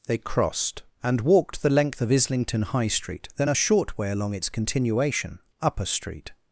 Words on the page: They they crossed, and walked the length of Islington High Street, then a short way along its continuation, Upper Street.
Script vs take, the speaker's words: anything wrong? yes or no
yes